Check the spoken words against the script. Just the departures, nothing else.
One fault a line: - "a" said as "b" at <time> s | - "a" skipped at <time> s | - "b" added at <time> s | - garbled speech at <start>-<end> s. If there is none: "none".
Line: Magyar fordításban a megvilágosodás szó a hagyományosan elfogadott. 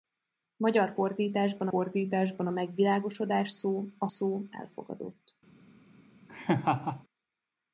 - "fordításban" added at 1.7 s
- "hagyományosan" said as "szó" at 4.1 s